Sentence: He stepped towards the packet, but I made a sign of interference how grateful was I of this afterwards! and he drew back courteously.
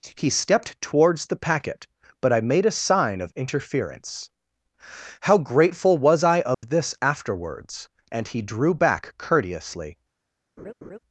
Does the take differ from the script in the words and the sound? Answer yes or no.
yes